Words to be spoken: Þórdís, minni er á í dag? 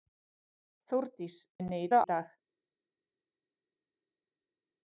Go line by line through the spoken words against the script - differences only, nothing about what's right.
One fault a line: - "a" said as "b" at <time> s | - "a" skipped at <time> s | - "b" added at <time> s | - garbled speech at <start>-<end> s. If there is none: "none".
none